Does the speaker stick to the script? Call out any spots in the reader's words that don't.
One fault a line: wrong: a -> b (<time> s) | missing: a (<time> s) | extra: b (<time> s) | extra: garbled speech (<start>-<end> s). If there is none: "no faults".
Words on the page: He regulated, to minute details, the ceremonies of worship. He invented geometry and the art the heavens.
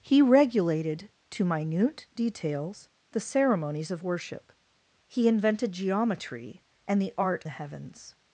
no faults